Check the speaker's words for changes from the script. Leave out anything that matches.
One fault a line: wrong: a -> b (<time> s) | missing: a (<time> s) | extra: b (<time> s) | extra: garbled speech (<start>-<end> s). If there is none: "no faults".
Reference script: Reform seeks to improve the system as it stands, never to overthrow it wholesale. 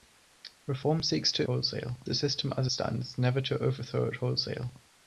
wrong: improve -> wholesale (1.4 s)
missing: it (2.7 s)